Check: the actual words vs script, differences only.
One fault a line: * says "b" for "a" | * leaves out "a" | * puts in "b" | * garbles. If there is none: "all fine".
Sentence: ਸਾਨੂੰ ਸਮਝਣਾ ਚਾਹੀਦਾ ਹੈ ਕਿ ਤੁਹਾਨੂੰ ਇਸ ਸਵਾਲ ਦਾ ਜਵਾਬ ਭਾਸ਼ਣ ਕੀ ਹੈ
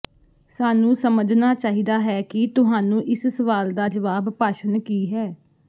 all fine